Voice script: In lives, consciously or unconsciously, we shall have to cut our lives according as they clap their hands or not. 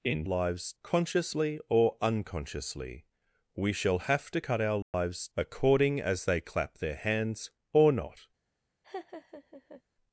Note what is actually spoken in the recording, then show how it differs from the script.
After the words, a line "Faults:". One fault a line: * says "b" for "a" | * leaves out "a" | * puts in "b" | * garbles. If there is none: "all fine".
In lives, consciously or unconsciously, we shall have to cut our lives according as they clap their hands or not.
Faults:
all fine